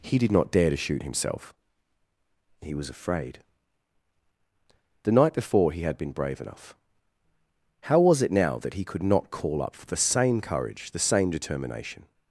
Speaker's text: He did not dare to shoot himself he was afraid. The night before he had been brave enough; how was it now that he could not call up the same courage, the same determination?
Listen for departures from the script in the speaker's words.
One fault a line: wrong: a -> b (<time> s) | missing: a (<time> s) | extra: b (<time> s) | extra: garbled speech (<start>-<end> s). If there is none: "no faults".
extra: for (9.8 s)